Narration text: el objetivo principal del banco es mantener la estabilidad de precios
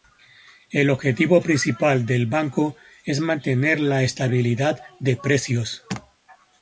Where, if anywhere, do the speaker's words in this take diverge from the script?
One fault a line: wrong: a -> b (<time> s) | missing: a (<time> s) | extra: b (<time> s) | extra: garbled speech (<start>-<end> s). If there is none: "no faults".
no faults